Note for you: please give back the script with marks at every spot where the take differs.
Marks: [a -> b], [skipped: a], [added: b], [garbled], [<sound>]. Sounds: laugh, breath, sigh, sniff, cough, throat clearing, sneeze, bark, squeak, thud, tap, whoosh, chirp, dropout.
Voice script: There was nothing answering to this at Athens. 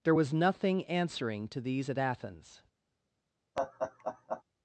There was nothing answering to [this -> these] at Athens. [laugh]